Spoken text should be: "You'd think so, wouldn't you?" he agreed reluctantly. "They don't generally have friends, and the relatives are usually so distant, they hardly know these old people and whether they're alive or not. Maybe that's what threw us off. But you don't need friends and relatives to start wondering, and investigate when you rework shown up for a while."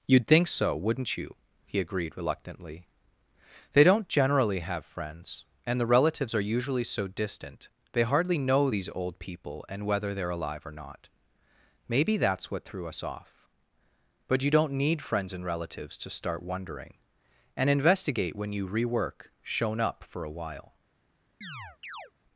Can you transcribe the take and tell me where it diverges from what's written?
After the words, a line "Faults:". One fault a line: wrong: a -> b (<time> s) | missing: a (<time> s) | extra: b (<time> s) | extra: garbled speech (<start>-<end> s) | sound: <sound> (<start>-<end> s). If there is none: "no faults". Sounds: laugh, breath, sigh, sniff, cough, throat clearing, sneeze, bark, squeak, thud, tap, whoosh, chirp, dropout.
"You'd think so, wouldn't you?" he agreed reluctantly. "They don't generally have friends, and the relatives are usually so distant, they hardly know these old people and whether they're alive or not. Maybe that's what threw us off. But you don't need friends and relatives to start wondering, and investigate when you rework shown up for a while."
Faults:
sound: chirp (21.4-22.1 s)